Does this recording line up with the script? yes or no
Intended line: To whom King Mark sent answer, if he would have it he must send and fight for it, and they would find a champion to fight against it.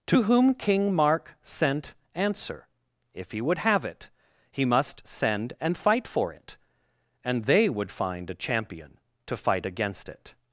yes